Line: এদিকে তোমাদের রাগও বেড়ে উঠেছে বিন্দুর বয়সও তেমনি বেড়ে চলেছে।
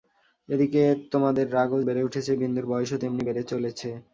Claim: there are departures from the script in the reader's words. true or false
false